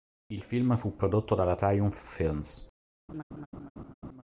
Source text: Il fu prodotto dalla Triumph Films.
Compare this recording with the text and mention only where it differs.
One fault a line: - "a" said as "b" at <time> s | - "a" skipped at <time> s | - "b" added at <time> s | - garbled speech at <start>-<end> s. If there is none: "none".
- "film" added at 0.4 s